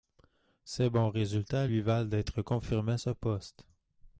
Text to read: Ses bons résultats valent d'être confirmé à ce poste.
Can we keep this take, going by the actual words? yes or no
no